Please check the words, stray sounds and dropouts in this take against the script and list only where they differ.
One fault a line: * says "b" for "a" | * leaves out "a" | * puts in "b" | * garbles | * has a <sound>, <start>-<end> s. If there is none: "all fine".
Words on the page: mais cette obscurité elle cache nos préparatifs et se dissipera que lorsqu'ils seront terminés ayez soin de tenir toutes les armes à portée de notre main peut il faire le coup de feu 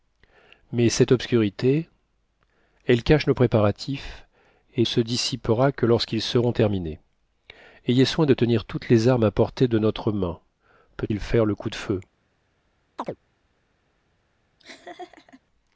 * has a chirp, 13.0-13.2 s
* has a laugh, 14.6-15.4 s